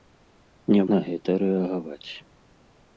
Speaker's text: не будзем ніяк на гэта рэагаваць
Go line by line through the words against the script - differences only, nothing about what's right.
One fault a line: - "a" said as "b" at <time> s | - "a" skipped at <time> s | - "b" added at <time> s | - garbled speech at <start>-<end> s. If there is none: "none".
- "будзем ніяк" skipped at 0.8 s